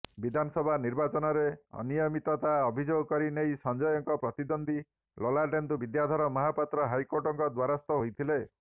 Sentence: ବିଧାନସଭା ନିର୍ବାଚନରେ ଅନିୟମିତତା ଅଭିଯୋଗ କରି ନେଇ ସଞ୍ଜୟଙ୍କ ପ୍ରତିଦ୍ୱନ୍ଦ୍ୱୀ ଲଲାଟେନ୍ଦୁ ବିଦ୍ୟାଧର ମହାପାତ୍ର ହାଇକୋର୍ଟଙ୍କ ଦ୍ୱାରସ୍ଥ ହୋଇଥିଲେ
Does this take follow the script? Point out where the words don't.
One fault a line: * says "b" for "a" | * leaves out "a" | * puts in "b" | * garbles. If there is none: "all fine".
all fine